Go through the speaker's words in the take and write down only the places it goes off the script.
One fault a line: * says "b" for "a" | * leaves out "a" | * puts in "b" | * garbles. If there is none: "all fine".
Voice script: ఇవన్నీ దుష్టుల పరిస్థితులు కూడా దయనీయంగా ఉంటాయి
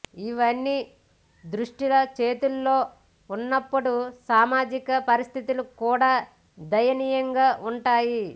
* puts in "చేతుల్లో ఉన్నప్పుడు సామాజిక"